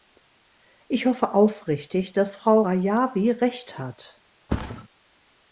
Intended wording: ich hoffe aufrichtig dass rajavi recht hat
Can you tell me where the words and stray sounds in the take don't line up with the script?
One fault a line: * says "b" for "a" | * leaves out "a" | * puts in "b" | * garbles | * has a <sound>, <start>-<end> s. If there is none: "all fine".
* puts in "frau"
* has a thud, 4.5-4.9 s